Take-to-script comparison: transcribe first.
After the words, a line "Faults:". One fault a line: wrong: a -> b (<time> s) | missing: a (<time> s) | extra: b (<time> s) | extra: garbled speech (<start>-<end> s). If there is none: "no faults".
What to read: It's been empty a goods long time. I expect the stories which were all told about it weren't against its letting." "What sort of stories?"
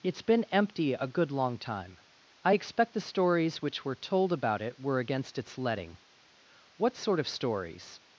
It's been empty a good long time. I expect the stories which were told about it were against its letting." "What sort of stories?"
Faults:
wrong: goods -> good (1.1 s)
missing: all (3.9 s)
wrong: weren't -> were (4.8 s)